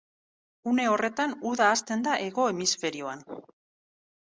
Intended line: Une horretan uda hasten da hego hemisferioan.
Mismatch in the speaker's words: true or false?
false